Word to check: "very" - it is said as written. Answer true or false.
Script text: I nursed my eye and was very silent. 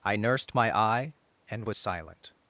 false